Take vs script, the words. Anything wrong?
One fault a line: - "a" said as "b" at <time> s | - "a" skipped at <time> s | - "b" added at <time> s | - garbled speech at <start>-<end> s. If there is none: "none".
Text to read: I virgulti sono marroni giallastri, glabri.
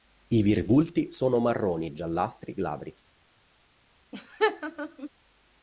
none